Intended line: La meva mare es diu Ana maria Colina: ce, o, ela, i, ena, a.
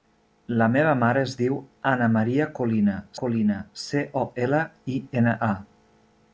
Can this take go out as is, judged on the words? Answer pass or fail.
fail